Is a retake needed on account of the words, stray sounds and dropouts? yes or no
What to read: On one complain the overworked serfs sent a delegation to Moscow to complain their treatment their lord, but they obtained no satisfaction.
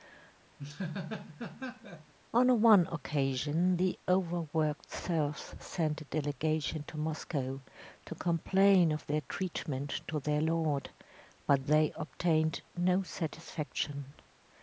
yes